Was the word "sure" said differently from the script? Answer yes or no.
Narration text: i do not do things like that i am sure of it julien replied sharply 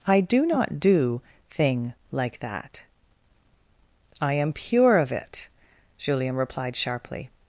yes